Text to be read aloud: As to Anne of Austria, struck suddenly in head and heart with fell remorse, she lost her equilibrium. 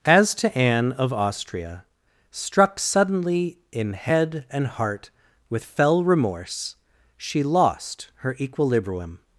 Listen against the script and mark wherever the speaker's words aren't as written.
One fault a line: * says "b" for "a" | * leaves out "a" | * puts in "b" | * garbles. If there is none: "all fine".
all fine